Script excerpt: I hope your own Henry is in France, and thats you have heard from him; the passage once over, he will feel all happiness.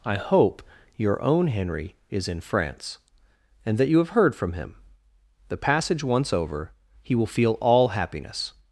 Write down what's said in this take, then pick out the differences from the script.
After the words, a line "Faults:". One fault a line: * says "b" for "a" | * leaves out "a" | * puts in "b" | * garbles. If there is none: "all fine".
I hope your own Henry is in France, and that you have heard from him; the passage once over, he will feel all happiness.
Faults:
* says "that" for "thats"